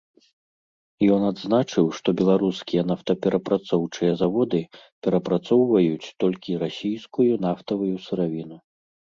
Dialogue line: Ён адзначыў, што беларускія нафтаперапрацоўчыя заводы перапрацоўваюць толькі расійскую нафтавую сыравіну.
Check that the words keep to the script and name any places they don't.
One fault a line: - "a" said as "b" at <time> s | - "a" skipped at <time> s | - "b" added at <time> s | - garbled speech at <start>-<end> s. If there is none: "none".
none